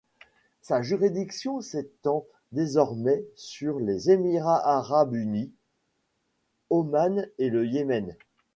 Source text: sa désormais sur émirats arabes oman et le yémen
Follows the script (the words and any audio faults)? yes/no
no